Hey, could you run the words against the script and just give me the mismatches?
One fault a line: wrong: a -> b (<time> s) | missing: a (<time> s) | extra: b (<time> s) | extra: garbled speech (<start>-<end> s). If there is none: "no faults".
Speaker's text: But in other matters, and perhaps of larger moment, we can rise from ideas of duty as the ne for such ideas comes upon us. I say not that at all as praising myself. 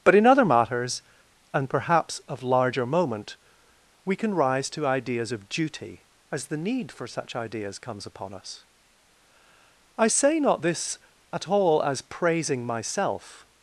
wrong: from -> to (4.7 s)
wrong: ne -> need (6.6 s)
wrong: that -> this (10.6 s)